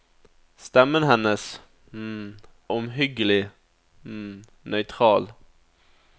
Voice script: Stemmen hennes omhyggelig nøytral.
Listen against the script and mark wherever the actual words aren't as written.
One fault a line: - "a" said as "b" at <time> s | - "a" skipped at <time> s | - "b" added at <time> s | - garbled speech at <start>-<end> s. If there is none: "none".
none